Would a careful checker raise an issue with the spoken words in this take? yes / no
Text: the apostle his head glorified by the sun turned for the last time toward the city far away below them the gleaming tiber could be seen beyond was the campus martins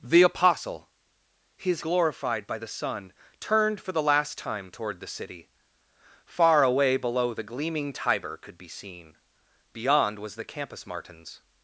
yes